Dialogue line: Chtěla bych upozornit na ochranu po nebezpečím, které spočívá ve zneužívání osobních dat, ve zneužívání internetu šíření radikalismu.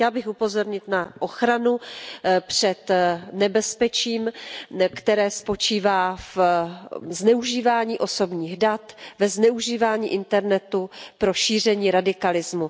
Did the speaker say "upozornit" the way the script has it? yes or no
yes